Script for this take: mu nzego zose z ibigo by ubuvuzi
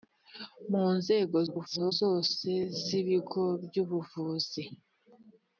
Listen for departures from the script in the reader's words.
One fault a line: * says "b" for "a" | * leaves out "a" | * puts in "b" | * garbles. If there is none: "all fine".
* garbles